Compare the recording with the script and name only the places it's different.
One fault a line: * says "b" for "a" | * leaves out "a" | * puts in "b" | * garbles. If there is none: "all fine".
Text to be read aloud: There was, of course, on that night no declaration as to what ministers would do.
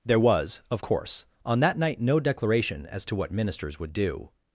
all fine